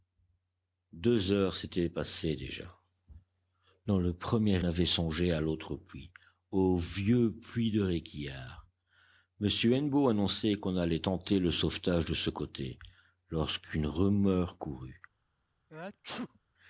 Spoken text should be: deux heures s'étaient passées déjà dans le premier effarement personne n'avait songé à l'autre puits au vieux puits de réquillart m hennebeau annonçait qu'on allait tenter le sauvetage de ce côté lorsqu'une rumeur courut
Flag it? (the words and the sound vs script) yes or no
yes